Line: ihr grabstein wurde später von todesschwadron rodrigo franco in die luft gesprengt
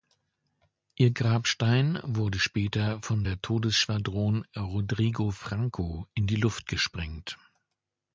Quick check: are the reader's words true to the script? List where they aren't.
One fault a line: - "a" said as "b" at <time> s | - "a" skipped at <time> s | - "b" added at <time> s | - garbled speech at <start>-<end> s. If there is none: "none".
- "der" added at 3.2 s